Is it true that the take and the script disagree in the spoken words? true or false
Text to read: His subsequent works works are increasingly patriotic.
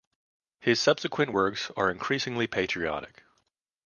true